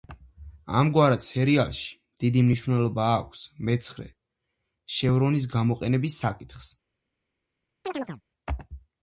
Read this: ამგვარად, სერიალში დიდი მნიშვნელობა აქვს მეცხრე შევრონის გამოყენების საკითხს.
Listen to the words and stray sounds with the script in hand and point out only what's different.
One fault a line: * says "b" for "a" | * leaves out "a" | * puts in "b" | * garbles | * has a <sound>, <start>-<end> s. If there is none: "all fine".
* has a chirp, 7.8-8.2 s